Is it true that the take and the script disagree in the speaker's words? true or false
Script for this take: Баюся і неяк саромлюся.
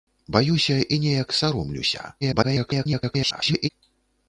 true